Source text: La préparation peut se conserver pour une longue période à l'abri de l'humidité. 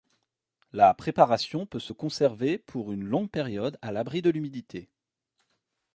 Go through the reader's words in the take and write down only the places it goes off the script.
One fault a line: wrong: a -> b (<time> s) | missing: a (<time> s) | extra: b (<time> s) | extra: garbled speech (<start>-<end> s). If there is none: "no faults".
no faults